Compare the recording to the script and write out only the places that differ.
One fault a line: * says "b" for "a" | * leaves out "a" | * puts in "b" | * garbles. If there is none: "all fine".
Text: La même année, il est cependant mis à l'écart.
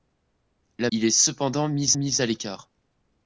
* leaves out "même année"
* puts in "mis"